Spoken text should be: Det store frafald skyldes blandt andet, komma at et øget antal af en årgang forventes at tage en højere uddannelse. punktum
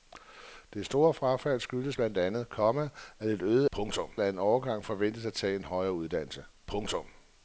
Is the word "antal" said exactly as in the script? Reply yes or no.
no